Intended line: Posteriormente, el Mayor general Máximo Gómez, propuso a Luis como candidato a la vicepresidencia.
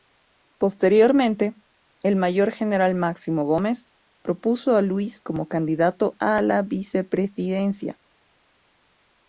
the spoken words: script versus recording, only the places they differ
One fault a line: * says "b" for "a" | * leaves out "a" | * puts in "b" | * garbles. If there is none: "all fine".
all fine